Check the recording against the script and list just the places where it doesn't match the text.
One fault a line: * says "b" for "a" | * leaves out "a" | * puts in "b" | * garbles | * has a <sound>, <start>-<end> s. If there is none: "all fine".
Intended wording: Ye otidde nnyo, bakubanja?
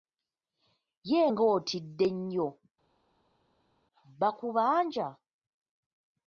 * puts in "nga"